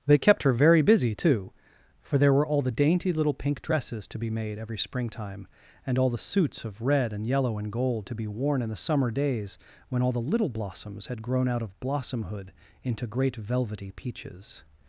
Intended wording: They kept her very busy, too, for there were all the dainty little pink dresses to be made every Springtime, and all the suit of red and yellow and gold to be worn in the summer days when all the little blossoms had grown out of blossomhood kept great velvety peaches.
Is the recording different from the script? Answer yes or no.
yes